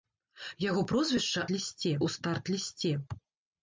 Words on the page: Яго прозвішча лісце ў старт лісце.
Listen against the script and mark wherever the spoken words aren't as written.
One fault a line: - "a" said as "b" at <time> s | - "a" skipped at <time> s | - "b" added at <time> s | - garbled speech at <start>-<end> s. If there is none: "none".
none